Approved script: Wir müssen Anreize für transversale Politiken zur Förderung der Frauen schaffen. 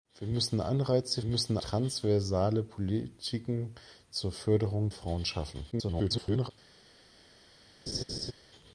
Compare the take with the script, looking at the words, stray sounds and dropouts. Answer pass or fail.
fail